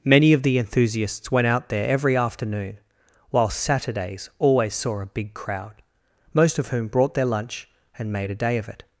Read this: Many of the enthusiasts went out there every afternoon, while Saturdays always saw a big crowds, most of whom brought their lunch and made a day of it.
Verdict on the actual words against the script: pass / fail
fail